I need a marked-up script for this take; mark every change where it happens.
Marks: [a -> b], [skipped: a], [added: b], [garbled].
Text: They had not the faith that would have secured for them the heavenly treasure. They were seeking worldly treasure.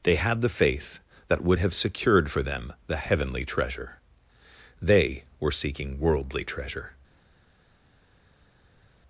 They had [skipped: not] the faith that would have secured for them the heavenly treasure. They were seeking worldly treasure.